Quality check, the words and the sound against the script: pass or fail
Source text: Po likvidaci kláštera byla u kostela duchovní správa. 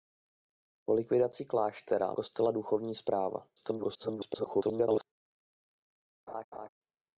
fail